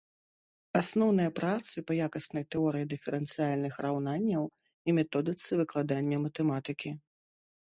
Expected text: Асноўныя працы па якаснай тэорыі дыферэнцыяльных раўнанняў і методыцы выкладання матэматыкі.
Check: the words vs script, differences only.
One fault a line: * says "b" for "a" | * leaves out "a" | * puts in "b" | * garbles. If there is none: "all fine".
all fine